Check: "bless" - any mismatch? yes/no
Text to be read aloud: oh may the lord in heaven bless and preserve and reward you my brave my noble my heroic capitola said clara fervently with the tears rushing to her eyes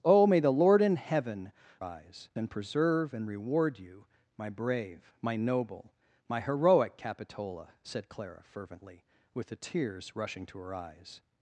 yes